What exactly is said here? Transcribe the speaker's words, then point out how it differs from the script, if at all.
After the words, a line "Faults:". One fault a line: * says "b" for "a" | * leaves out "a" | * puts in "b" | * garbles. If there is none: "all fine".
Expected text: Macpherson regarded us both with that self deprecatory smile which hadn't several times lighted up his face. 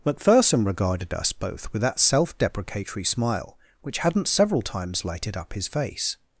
Macpherson regarded us both with that self deprecatory smile which hadn't several times lighted up his face.
Faults:
all fine